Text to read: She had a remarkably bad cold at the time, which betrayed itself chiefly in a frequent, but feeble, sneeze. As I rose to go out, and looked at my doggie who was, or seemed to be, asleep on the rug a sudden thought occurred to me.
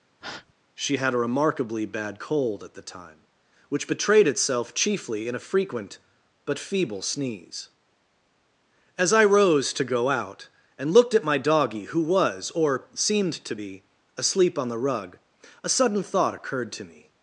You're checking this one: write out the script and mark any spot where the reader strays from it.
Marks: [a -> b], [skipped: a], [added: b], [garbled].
She had a remarkably bad cold at the time, which betrayed itself chiefly in a frequent, but feeble, sneeze. As I rose to go out, and looked at my doggie who was, or seemed to be, asleep on the rug a sudden thought occurred to me.